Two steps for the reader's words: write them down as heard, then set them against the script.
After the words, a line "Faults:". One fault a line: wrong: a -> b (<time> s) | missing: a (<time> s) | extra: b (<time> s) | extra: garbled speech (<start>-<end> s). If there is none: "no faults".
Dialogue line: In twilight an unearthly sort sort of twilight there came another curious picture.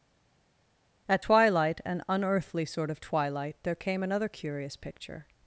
At twilight an unearthly sort of twilight there came another curious picture.
Faults:
wrong: In -> At (1.1 s)
missing: sort (2.9 s)